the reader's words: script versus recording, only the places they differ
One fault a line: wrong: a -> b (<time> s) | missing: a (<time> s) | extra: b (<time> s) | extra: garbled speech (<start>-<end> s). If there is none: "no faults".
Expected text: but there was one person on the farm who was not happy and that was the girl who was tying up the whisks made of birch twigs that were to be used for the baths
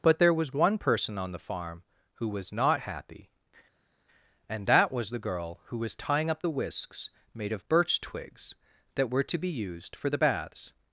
no faults